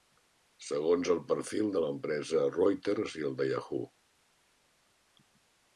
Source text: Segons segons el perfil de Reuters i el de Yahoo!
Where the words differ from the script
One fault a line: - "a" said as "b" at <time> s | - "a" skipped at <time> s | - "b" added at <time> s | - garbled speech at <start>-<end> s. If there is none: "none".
- "segons" skipped at 1.1 s
- "l'empresa" added at 1.8 s